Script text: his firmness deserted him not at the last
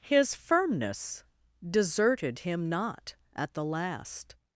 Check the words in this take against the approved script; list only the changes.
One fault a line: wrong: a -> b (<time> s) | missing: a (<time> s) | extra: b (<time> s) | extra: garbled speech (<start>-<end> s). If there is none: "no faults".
no faults